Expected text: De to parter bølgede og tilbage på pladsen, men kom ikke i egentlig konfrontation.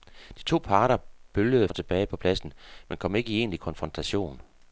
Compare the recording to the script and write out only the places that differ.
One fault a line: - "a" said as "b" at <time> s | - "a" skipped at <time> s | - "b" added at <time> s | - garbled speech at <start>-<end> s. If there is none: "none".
none